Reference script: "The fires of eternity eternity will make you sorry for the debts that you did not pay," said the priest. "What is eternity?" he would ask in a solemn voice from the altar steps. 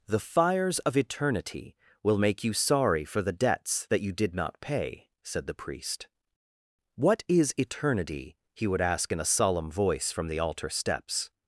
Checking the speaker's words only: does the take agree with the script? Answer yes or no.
no